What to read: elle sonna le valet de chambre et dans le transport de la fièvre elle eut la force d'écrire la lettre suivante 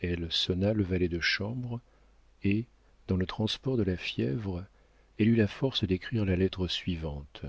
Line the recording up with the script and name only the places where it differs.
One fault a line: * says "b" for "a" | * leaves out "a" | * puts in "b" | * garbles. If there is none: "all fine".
all fine